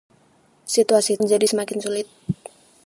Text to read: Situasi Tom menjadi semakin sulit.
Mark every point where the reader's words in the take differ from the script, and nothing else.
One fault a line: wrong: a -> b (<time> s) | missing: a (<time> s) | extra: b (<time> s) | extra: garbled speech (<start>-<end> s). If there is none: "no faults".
missing: Tom (1.2 s)